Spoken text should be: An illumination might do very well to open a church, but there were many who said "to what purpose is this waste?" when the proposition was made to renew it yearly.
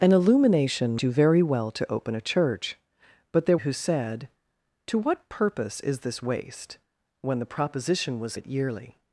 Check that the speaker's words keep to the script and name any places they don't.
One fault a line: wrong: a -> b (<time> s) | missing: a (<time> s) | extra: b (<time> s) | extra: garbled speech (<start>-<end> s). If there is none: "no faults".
missing: might (1.0 s)
missing: were many (3.6 s)
missing: made to renew (8.4 s)